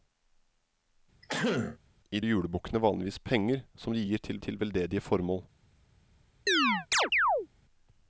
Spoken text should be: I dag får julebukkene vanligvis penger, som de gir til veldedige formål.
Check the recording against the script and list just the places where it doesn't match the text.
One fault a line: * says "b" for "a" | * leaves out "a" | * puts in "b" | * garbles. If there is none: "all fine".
* leaves out "dag får"
* puts in "til"